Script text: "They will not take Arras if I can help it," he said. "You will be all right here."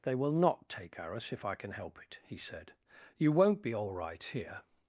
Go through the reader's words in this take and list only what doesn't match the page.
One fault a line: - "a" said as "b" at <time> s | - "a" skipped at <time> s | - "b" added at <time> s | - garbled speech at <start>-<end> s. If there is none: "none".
- "will" said as "won't" at 3.3 s